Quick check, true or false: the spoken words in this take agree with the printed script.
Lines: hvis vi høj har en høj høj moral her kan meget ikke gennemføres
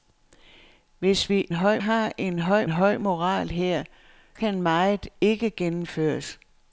true